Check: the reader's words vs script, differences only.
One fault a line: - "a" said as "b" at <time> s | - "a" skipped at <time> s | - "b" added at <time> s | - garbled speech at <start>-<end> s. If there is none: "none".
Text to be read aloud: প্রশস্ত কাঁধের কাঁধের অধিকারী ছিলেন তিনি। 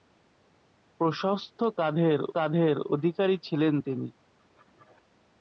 none